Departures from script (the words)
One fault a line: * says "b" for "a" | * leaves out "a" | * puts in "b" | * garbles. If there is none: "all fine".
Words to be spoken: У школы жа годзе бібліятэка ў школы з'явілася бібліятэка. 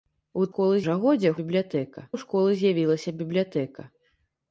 all fine